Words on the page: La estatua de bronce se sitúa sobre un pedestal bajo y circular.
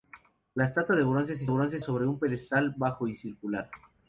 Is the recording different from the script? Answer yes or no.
yes